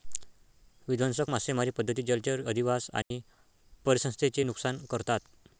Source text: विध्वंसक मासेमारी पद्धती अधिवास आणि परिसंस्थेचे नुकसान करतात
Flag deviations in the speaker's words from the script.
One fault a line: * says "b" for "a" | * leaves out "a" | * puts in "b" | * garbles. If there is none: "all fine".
* puts in "जलचर"